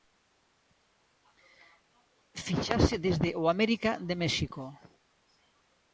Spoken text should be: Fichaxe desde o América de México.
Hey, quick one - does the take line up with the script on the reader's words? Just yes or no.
yes